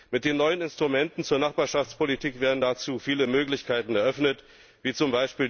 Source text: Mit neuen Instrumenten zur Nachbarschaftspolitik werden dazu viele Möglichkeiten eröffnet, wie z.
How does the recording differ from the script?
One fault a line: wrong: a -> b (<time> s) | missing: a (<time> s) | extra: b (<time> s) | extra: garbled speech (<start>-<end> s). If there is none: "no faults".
extra: den (0.2 s)